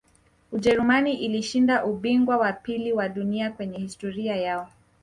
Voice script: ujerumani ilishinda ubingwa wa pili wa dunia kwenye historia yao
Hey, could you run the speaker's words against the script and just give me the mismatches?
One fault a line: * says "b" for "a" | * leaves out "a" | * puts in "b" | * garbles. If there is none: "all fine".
all fine